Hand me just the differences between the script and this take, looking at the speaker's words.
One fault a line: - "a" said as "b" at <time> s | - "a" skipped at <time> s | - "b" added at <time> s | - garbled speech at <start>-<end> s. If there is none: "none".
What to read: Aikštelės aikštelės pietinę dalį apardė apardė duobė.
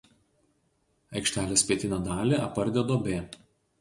- "aikštelės" skipped at 1.6 s
- "apardė" skipped at 2.9 s